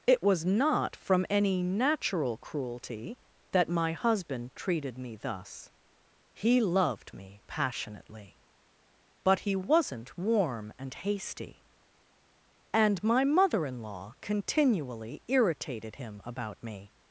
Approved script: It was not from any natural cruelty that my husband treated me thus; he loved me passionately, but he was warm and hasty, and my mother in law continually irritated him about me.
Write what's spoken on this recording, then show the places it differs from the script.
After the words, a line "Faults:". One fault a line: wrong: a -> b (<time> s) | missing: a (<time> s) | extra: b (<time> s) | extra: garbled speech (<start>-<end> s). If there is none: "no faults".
It was not from any natural cruelty that my husband treated me thus; he loved me passionately, but he wasn't warm and hasty, and my mother in law continually irritated him about me.
Faults:
wrong: was -> wasn't (9.5 s)